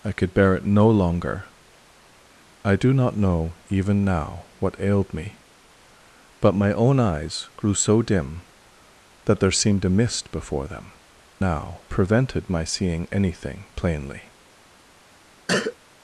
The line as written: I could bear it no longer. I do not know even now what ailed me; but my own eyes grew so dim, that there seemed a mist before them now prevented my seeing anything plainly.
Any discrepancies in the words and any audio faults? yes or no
yes